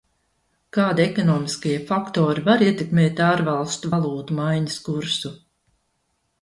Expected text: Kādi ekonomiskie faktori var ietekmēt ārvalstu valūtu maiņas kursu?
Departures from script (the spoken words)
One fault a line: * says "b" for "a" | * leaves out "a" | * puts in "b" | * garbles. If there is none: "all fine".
all fine